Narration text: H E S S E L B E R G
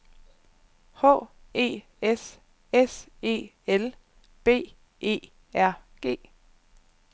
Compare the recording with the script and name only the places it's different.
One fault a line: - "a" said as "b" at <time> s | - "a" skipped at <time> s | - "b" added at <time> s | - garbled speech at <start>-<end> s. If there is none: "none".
none